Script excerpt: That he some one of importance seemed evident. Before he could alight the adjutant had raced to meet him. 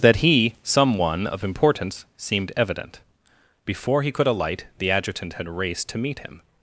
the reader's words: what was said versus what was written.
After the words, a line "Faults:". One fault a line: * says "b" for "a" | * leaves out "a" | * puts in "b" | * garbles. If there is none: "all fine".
That he some one of importance seemed evident. Before he could alight the adjutant had raced to meet him.
Faults:
all fine